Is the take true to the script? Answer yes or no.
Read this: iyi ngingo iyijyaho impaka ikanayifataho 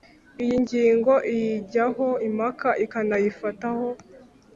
yes